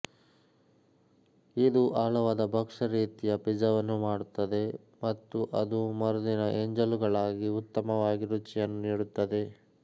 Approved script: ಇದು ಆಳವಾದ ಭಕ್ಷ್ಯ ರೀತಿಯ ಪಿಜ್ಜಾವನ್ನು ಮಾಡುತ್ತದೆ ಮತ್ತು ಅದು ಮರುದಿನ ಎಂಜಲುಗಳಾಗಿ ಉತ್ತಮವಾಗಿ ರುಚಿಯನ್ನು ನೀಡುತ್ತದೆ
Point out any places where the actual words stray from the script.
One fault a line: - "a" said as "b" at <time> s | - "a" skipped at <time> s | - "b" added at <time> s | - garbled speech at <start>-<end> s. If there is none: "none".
none